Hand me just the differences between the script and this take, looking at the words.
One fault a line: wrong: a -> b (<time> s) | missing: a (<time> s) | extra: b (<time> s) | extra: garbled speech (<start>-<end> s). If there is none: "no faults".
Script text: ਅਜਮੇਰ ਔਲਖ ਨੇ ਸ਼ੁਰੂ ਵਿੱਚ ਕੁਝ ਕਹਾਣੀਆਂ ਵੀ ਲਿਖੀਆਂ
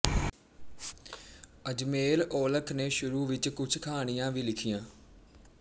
no faults